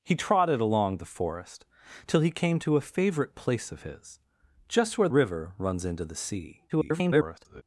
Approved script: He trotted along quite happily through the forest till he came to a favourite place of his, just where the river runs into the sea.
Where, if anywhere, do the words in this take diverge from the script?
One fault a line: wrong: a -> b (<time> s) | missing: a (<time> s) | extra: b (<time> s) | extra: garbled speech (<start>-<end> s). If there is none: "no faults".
missing: quite happily through (1.0 s)
missing: the (5.1 s)
extra: garbled speech (6.7-7.6 s)